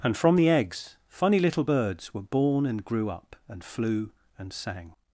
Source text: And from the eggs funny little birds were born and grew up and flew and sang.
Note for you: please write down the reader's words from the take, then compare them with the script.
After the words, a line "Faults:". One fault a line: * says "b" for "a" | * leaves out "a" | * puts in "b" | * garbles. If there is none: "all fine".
And from the eggs funny little birds were born and grew up and flew and sang.
Faults:
all fine